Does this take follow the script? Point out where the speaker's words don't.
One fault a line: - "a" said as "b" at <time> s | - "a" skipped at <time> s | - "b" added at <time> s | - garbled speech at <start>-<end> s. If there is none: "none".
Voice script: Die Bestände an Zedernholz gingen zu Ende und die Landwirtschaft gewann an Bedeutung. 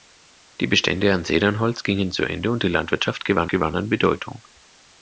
- "gewann" added at 3.5 s